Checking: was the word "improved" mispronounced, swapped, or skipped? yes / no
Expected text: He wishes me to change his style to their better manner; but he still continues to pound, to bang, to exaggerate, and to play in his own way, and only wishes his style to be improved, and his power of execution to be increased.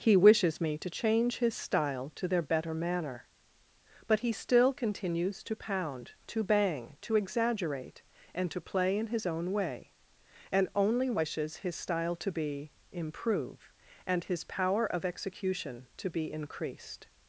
yes